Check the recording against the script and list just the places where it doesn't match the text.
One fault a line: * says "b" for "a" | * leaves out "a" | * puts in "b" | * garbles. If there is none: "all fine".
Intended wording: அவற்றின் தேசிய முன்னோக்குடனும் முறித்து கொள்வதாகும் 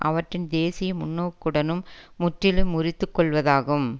* puts in "முற்றிலும்"